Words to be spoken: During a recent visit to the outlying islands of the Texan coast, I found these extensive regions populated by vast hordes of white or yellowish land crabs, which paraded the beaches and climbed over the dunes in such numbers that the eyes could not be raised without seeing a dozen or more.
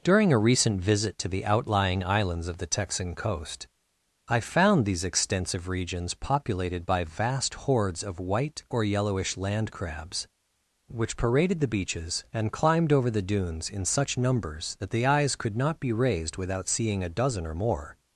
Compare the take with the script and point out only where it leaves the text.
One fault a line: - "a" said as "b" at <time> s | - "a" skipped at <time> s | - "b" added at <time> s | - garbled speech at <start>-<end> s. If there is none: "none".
none